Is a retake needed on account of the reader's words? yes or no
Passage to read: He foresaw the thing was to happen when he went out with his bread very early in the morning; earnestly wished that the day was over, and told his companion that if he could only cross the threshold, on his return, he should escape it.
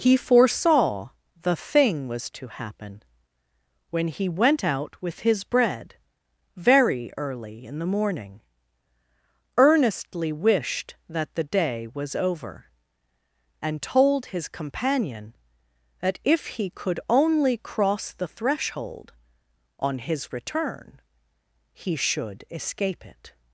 no